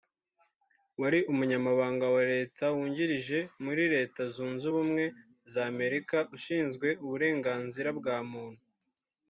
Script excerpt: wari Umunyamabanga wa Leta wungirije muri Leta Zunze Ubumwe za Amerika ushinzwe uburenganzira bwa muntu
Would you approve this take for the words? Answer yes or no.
yes